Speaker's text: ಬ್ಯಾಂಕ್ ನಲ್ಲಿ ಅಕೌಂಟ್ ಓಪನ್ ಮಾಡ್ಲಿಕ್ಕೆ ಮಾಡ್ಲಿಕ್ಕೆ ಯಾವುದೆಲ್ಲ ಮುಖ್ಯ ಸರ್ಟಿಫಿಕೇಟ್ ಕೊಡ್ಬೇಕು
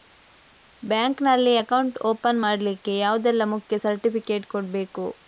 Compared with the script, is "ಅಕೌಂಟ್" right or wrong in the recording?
right